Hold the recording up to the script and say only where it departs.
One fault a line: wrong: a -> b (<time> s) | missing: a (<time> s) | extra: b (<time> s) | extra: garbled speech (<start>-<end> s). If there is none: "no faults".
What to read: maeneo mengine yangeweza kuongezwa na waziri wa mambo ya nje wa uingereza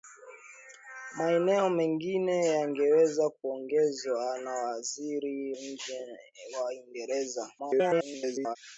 missing: wa mambo ya (5.5 s)
extra: garbled speech (7.6-8.6 s)